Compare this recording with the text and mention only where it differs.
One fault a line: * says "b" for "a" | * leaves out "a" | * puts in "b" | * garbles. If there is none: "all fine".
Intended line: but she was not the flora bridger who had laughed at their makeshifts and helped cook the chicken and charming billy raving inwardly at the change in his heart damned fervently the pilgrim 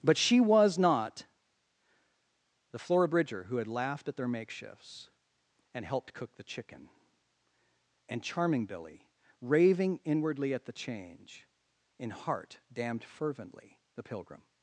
* leaves out "his"